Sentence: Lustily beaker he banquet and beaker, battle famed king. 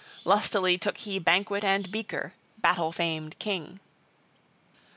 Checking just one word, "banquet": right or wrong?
right